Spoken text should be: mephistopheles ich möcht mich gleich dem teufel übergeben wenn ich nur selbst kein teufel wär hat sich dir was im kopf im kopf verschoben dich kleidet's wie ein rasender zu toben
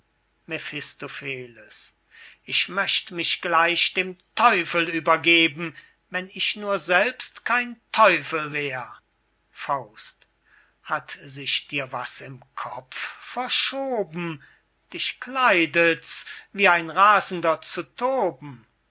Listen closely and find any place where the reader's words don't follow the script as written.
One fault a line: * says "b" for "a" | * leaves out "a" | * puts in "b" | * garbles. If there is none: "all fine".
* leaves out "im kopf"